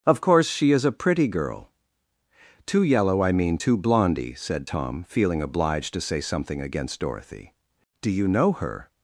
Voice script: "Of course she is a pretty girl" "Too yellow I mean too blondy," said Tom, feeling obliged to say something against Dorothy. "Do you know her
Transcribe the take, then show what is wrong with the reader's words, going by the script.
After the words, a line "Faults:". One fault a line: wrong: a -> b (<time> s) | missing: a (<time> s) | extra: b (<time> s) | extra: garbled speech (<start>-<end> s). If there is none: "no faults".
"Of course she is a pretty girl" "Too yellow I mean too blondy," said Tom, feeling obliged to say something against Dorothy. "Do you know her
Faults:
no faults